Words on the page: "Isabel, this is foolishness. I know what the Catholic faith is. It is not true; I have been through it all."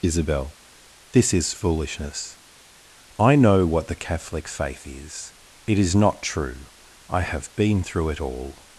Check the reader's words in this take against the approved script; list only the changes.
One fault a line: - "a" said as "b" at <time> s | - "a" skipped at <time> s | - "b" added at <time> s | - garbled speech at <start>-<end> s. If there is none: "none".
none